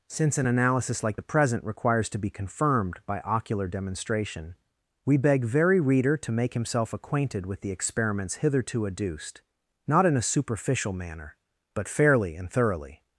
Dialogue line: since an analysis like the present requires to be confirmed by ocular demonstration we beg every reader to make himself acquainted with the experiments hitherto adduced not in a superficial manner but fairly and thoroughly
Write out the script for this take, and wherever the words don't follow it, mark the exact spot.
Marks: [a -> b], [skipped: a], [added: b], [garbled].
since an analysis like the present requires to be confirmed by ocular demonstration we beg [every -> very] reader to make himself acquainted with the experiments hitherto adduced not in a superficial manner but fairly and thoroughly